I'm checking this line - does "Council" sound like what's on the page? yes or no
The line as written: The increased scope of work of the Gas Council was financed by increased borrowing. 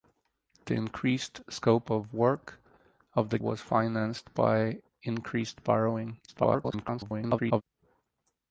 no